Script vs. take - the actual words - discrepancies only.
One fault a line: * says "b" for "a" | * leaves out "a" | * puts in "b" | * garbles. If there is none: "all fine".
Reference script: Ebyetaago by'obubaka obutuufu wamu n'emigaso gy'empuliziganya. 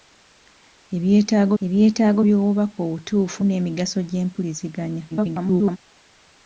* puts in "ebyetaago"
* leaves out "wamu"
* garbles